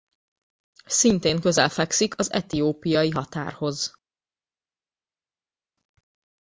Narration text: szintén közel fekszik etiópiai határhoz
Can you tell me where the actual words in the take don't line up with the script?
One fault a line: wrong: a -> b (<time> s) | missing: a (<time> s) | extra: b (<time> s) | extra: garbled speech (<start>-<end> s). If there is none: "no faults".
extra: az (2.2 s)